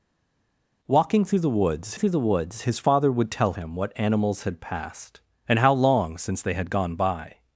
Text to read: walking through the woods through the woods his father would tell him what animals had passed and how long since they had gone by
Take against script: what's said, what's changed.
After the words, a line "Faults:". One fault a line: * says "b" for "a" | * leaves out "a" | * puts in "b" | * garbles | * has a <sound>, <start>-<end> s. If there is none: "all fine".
walking through the woods through the woods his father would tell him what animals had passed and how long since they had gone by
Faults:
all fine